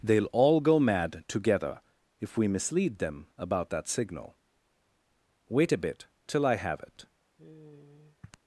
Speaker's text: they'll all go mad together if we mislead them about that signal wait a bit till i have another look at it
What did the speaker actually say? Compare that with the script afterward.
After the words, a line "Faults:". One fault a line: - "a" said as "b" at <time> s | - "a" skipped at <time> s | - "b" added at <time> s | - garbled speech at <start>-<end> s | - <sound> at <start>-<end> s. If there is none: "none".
they'll all go mad together if we mislead them about that signal wait a bit till i have it
Faults:
- "another look at" skipped at 6.8 s
- sigh at 7.4-8.4 s